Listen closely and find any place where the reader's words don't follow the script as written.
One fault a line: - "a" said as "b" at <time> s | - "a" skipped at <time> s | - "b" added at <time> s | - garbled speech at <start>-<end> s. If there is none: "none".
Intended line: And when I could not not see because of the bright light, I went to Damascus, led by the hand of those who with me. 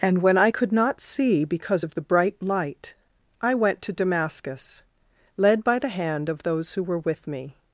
- "not" skipped at 1.0 s
- "were" added at 6.8 s